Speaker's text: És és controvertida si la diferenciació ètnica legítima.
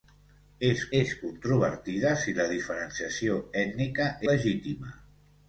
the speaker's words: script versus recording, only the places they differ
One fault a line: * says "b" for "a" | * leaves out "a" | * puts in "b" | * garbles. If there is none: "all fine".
all fine